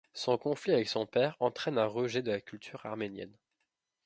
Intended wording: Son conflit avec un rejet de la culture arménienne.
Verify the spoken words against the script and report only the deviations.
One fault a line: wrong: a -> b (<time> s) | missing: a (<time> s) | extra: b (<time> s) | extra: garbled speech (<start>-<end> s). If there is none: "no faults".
extra: son père entraîne (0.9 s)